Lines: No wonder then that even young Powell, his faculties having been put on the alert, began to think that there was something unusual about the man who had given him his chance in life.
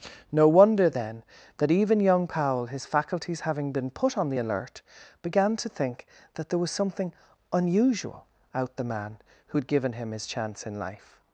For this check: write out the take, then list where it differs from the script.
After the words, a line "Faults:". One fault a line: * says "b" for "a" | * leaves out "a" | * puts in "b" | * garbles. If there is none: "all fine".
No wonder then that even young Powell, his faculties having been put on the alert, began to think that there was something unusual out the man who had given him his chance in life.
Faults:
* says "out" for "about"